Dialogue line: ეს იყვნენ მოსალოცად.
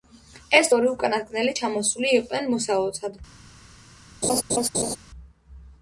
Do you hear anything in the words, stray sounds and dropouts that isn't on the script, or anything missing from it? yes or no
yes